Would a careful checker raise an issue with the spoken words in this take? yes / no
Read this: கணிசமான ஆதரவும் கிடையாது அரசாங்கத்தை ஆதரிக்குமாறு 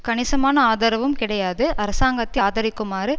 no